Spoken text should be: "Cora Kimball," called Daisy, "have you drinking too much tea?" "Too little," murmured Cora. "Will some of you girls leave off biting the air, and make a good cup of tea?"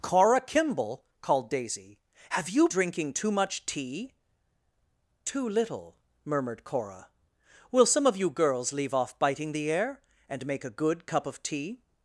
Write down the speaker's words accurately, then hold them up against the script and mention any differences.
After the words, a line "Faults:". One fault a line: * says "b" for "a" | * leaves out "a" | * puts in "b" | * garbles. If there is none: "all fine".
"Cora Kimball," called Daisy, "have you drinking too much tea?" "Too little," murmured Cora. "Will some of you girls leave off biting the air, and make a good cup of tea?"
Faults:
all fine